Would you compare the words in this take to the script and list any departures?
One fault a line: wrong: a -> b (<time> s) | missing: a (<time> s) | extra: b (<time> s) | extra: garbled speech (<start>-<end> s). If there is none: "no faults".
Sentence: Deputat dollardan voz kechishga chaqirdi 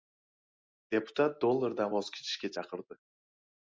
no faults